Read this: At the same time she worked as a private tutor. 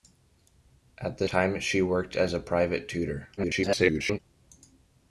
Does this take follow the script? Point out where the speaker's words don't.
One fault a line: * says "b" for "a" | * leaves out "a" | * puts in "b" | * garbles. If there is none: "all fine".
* leaves out "same"
* garbles